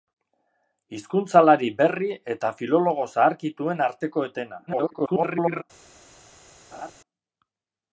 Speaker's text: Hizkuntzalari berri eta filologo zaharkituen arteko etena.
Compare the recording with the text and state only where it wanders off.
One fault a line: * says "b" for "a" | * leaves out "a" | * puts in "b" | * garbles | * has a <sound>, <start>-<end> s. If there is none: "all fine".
* garbles
* has a laugh, 6.7-6.9 s